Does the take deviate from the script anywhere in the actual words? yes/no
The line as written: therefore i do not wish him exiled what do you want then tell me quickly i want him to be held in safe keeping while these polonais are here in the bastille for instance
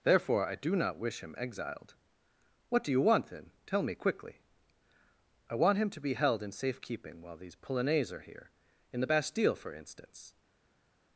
no